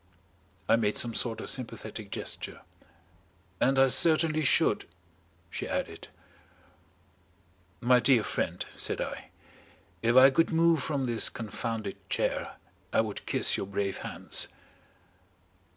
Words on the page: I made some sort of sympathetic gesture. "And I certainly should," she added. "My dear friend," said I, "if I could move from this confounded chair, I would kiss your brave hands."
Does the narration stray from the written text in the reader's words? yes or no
no